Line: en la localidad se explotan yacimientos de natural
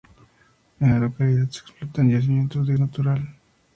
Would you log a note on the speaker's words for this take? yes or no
no